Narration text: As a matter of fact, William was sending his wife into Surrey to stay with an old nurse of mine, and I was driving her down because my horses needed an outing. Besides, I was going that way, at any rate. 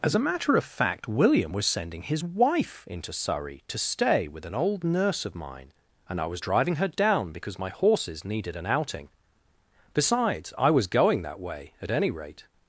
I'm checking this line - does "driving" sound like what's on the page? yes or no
yes